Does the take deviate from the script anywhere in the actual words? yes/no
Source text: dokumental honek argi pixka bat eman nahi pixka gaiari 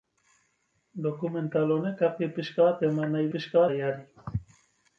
no